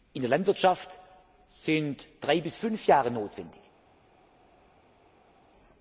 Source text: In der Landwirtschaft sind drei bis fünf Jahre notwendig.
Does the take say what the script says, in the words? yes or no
yes